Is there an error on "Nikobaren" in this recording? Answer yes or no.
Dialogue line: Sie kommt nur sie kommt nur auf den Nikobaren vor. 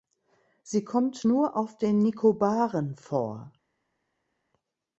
no